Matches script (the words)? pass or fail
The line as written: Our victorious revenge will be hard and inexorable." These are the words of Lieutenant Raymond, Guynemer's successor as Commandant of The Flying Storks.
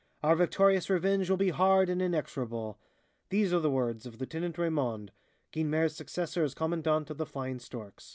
pass